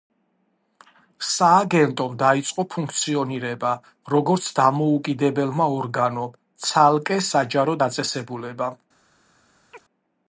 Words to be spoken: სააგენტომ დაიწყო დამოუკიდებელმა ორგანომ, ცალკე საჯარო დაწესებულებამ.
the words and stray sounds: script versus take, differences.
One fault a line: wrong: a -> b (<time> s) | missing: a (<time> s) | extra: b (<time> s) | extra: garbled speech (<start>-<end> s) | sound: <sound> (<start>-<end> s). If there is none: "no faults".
extra: ფუნქციონირება როგორც (2.8 s)
sound: chirp (9.7-9.8 s)